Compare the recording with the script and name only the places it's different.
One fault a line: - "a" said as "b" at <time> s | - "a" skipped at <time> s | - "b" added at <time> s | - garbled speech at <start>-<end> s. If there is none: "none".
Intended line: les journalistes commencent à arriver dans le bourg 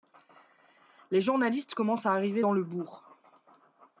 none